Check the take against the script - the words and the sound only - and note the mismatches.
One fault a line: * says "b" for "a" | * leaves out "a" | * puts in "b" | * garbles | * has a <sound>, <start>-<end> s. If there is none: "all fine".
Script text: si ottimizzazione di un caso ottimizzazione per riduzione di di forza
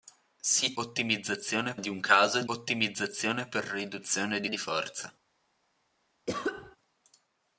* has a cough, 6.3-6.8 s